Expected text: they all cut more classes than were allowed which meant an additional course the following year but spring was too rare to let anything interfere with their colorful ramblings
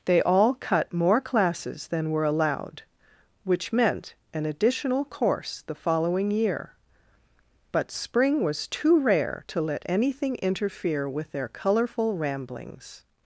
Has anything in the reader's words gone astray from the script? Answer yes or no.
no